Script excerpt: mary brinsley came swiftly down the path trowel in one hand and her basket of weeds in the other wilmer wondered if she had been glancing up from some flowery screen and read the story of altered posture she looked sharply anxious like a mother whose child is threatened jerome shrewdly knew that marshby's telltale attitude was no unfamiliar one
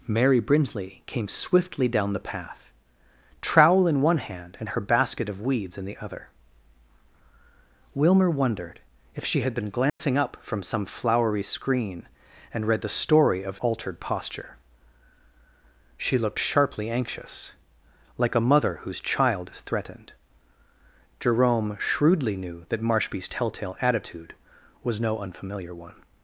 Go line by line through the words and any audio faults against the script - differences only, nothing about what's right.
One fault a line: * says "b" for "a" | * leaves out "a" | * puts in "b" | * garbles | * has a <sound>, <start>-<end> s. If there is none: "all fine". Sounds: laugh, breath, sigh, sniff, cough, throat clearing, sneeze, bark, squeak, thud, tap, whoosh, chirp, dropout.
* has a dropout, 9.9-10.0 s